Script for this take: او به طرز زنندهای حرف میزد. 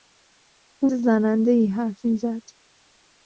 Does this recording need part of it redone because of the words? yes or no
yes